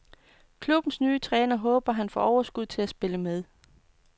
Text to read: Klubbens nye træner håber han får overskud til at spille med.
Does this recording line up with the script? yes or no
yes